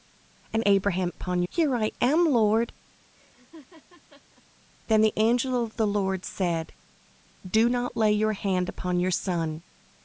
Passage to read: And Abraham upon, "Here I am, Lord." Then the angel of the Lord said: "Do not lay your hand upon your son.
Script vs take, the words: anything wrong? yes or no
no